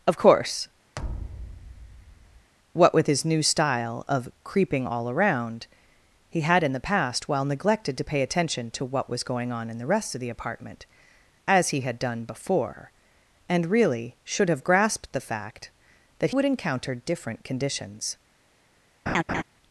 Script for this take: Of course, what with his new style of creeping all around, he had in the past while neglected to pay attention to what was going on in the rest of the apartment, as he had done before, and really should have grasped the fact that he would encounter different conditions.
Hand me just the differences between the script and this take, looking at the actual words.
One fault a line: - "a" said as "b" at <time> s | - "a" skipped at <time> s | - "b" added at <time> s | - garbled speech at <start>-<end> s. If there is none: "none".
- "he" skipped at 16.3 s